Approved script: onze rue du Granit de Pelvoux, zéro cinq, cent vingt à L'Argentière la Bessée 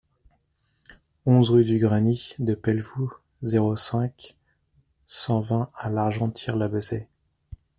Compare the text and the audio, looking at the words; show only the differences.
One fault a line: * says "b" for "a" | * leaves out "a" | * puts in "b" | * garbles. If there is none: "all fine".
all fine